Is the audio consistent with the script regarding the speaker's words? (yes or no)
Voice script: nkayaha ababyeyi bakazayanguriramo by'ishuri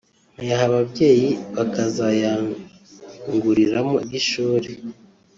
yes